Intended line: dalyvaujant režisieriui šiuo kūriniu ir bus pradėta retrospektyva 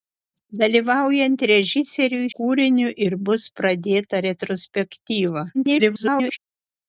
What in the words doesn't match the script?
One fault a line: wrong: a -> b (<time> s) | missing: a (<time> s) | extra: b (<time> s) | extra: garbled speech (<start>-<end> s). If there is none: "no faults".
missing: šiuo (2.3 s)
extra: garbled speech (5.5-6.4 s)